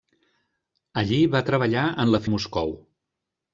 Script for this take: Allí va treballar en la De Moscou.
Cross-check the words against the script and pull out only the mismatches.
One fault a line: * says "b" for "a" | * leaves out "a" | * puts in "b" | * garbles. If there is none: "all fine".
all fine